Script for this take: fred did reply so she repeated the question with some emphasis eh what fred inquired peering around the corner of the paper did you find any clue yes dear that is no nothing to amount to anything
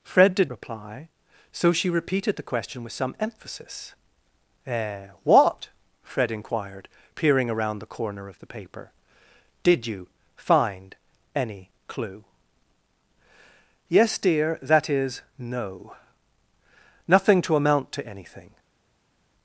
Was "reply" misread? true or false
false